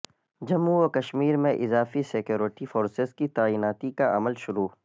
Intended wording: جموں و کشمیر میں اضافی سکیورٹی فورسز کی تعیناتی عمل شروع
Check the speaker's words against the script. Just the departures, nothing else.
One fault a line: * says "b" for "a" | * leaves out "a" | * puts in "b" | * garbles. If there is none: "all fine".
* puts in "کا"